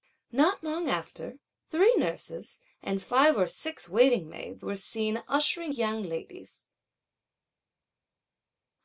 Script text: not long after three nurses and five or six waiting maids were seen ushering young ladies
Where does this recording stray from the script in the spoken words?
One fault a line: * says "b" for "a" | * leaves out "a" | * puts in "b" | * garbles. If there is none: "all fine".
all fine